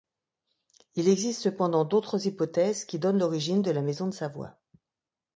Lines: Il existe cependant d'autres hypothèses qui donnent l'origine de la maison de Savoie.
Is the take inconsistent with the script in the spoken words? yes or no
no